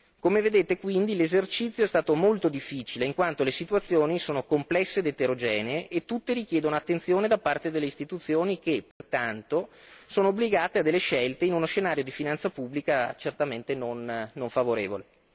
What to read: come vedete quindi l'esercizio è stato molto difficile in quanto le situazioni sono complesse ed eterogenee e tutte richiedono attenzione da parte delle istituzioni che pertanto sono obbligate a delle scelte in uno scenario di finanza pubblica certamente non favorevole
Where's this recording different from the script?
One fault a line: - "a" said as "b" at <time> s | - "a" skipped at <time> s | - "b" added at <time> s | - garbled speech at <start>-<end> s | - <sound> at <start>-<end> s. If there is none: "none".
- dropout at 8.9-9.0 s